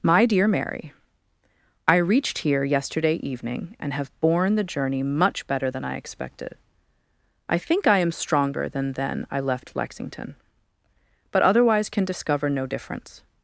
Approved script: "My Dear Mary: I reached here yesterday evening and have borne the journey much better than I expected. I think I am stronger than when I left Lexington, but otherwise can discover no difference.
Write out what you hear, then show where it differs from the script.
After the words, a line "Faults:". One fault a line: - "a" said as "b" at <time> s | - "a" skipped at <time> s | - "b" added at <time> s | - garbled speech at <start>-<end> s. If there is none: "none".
"My Dear Mary: I reached here yesterday evening and have borne the journey much better than I expected. I think I am stronger than then I left Lexington, but otherwise can discover no difference.
Faults:
- "when" said as "then" at 8.9 s